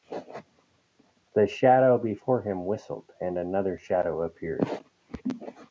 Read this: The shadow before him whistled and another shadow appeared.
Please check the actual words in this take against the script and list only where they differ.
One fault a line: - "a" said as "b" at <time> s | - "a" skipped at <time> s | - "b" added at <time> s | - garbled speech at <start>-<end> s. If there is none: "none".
none